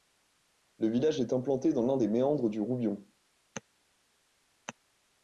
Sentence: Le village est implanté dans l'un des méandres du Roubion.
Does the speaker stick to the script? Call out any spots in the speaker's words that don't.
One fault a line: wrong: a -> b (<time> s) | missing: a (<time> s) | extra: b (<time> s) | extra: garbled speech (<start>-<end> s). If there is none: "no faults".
no faults